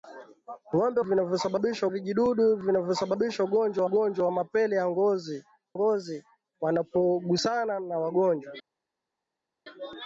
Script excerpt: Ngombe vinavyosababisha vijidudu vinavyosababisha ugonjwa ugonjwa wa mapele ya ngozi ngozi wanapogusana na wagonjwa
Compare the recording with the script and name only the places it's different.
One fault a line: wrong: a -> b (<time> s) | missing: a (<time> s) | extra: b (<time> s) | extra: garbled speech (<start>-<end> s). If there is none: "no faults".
no faults